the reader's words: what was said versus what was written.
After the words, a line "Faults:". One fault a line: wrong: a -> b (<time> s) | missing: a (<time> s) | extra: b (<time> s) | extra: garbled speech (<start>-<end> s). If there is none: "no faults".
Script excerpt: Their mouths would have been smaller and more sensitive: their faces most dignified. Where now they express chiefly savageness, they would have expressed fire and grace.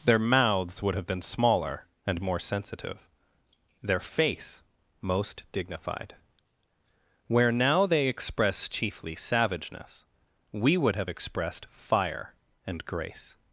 Their mouths would have been smaller and more sensitive: their face most dignified. Where now they express chiefly savageness, we would have expressed fire and grace.
Faults:
wrong: faces -> face (4.0 s)
wrong: they -> we (10.5 s)